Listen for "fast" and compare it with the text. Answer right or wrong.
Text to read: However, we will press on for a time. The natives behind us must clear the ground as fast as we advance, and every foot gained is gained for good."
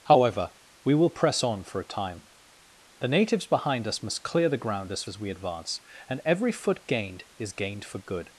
wrong